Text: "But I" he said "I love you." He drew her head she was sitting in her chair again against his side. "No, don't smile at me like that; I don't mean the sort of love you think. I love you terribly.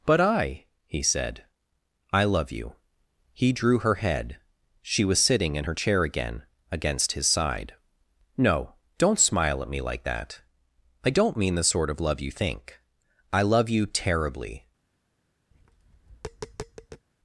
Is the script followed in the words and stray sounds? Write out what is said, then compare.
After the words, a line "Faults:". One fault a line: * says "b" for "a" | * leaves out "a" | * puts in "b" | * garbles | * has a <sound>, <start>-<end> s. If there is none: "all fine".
"But I" he said "I love you." He drew her head she was sitting in her chair again against his side. "No, don't smile at me like that; I don't mean the sort of love you think. I love you terribly.
Faults:
* has a tap, 15.5-17.1 s